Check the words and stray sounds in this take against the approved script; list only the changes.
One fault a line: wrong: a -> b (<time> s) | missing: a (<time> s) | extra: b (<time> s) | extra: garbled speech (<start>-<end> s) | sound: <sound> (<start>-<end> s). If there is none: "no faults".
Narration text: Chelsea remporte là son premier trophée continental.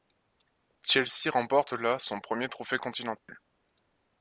sound: dropout (3.2-3.3 s)